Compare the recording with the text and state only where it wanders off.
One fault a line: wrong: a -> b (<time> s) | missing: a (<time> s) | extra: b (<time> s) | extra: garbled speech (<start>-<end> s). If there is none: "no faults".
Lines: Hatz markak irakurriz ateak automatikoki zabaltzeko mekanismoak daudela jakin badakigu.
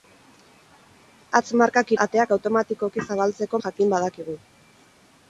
missing: irakurriz (1.9 s)
missing: mekanismoak daudela (3.6 s)